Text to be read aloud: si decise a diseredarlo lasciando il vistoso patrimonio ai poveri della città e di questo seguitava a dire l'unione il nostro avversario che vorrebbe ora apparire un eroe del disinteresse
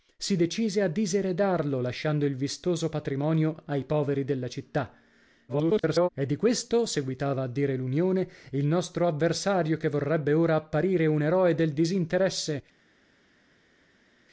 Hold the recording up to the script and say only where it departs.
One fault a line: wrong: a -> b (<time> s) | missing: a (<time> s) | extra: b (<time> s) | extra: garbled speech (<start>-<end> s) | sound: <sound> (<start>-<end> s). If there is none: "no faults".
extra: garbled speech (5.5-6.1 s)